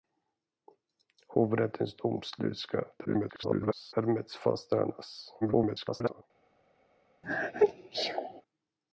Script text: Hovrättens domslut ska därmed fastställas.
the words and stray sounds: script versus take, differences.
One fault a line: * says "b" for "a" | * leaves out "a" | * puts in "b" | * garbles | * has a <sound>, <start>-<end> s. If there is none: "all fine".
* garbles
* garbles
* has a sneeze, 7.2-8.4 s